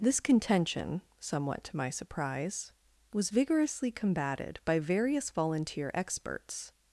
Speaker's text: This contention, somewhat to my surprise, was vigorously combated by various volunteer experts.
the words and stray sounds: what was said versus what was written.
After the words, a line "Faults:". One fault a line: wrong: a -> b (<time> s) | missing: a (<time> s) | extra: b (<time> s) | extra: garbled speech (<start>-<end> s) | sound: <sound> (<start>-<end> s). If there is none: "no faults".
This contention, somewhat to my surprise, was vigorously combated by various volunteer experts.
Faults:
no faults